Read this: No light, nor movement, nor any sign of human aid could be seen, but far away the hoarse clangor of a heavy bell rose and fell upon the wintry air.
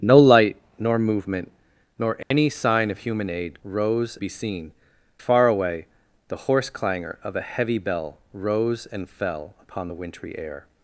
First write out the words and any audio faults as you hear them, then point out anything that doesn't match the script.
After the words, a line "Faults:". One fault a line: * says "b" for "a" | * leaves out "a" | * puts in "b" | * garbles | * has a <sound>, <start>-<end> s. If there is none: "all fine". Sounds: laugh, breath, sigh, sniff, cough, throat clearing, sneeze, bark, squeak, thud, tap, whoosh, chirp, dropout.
No light, nor movement, nor any sign of human aid rose be seen, far away the hoarse clangor of a heavy bell rose and fell upon the wintry air.
Faults:
* has a dropout, 2.2-2.3 s
* says "rose" for "could"
* leaves out "but"